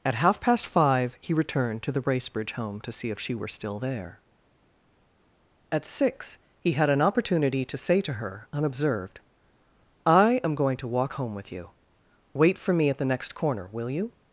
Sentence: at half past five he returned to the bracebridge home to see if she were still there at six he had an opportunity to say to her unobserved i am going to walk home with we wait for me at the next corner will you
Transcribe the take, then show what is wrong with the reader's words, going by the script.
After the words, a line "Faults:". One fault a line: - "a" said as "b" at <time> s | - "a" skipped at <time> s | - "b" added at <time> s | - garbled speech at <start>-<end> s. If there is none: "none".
at half past five he returned to the bracebridge home to see if she were still there at six he had an opportunity to say to her unobserved i am going to walk home with you wait for me at the next corner will you
Faults:
- "we" said as "you" at 11.5 s